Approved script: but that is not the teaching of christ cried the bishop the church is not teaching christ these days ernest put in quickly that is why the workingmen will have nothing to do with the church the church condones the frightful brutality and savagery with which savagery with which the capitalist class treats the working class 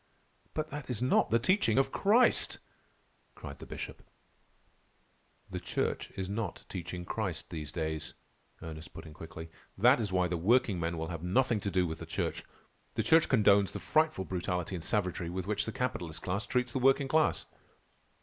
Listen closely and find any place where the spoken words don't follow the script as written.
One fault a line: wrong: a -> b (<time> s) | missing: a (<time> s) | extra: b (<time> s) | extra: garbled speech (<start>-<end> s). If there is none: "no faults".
missing: savagery with which (15.7 s)